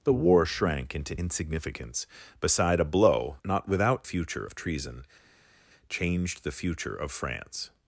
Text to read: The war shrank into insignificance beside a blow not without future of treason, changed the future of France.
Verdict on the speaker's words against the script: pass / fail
pass